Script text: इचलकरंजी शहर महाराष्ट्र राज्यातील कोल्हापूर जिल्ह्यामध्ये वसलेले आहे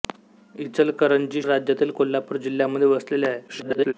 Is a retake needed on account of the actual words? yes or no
yes